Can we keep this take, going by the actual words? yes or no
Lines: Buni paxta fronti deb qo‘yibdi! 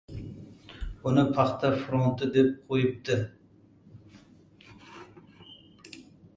yes